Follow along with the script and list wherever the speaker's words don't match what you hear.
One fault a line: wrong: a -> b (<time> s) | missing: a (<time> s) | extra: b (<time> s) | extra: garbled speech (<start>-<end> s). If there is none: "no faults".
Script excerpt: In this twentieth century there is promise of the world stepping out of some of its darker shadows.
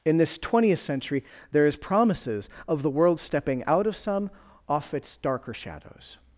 wrong: promise -> promises (1.8 s)
wrong: of -> off (4.7 s)